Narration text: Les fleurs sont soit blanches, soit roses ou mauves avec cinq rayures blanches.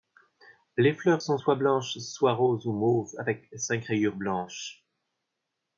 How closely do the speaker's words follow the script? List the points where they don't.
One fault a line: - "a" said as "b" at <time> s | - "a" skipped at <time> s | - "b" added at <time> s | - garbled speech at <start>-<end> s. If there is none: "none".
none